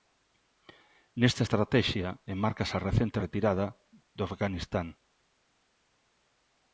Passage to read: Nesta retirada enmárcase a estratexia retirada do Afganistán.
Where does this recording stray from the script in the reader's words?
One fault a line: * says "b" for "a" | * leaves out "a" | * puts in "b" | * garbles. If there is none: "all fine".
* says "estratexia" for "retirada"
* says "recente" for "estratexia"